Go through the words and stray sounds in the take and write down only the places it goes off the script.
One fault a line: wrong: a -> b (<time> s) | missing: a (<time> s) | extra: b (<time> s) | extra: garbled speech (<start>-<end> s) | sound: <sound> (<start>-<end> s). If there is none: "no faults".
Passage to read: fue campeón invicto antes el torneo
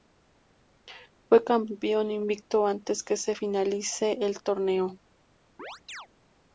extra: que se finalice (3.0 s)
sound: chirp (5.6-6.1 s)